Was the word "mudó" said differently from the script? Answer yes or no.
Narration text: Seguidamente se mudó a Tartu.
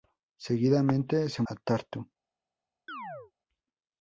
yes